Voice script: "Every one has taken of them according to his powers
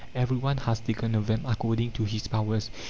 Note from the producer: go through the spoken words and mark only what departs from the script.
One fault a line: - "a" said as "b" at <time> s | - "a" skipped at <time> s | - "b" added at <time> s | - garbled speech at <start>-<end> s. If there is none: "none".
none